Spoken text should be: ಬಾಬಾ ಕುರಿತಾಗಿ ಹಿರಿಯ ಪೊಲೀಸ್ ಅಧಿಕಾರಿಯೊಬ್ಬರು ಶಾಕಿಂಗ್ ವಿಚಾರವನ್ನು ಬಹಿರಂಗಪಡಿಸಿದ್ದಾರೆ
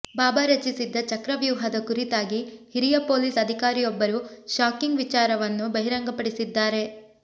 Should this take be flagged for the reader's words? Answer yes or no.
yes